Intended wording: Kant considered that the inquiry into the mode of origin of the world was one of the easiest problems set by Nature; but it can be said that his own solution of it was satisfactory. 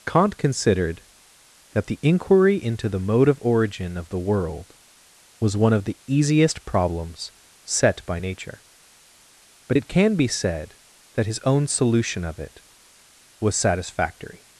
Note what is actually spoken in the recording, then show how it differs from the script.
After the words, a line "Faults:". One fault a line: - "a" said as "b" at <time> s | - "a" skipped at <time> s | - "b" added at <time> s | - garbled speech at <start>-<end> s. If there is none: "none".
Kant considered that the inquiry into the mode of origin of the world was one of the easiest problems set by Nature; but it can be said that his own solution of it was satisfactory.
Faults:
none